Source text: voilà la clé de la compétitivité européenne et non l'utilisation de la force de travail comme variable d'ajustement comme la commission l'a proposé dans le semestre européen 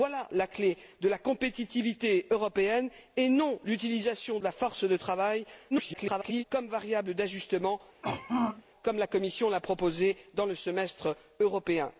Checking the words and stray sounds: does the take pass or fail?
fail